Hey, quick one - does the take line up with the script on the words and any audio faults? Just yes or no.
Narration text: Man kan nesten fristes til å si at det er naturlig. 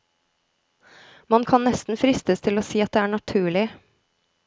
yes